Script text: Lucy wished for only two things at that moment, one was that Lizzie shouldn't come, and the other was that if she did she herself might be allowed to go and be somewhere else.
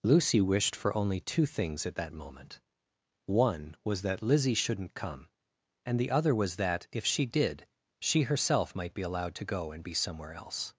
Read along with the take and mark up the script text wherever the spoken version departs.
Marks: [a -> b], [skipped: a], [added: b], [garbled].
Lucy wished for only two things at that moment, one was that Lizzie shouldn't come, and the other was that if she did she herself might be allowed to go and be somewhere else.